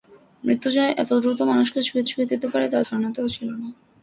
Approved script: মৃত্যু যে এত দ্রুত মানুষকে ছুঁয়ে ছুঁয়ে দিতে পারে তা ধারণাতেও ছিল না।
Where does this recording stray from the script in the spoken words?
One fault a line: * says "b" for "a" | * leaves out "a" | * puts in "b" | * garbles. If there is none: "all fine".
all fine